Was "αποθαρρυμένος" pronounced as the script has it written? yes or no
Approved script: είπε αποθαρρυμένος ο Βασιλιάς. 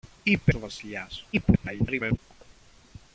no